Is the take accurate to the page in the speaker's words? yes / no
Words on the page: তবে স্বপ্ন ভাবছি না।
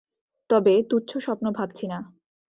no